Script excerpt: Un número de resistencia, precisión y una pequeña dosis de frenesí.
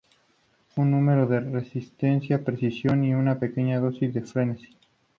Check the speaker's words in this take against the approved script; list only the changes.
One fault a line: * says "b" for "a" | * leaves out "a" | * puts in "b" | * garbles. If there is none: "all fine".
all fine